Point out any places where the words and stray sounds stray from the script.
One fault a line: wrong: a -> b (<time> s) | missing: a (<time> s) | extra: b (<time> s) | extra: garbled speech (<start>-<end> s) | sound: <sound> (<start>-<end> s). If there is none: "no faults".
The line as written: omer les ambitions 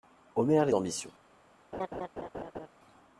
sound: laugh (1.7-2.7 s)